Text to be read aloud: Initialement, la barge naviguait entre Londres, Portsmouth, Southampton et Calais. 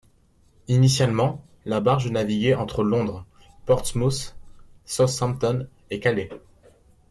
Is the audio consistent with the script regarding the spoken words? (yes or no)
yes